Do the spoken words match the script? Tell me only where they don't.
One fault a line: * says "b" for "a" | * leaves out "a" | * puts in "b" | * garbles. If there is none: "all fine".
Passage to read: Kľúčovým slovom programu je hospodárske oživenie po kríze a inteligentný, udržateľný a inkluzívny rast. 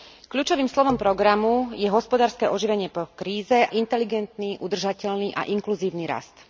* leaves out "a"